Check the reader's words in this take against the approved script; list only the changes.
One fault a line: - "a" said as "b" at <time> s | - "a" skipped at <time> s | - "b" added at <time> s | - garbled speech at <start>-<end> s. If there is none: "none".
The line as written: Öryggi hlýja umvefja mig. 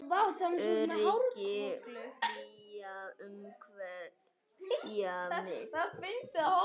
none